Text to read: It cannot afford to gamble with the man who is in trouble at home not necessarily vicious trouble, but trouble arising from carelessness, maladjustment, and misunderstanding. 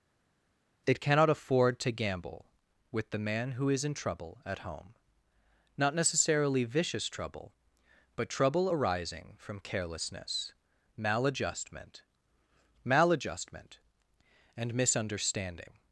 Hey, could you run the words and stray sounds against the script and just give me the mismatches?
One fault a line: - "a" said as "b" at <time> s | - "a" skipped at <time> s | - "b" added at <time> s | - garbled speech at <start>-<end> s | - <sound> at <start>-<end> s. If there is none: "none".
- "maladjustment" added at 12.8 s